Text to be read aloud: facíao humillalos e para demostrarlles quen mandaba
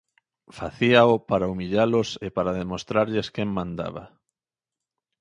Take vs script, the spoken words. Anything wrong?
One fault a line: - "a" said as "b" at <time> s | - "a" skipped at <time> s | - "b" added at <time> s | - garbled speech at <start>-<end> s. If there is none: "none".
- "para" added at 1.3 s